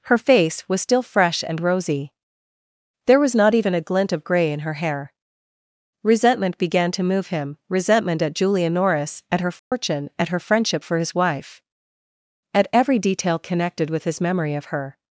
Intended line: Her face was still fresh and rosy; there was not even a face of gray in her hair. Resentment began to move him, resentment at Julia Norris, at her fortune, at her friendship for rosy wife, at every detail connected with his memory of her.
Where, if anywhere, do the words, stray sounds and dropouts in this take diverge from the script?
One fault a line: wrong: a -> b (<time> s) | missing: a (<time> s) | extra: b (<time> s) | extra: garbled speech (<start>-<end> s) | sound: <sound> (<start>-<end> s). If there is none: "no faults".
wrong: face -> glint (3.8 s)
sound: dropout (9.6-9.7 s)
wrong: rosy -> his (11.0 s)